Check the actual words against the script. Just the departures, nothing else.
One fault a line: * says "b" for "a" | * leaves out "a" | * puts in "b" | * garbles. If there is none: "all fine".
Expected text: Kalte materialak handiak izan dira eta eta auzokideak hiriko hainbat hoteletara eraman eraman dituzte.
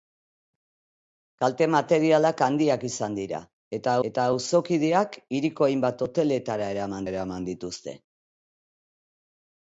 all fine